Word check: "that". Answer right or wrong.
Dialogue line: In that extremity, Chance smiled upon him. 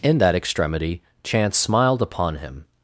right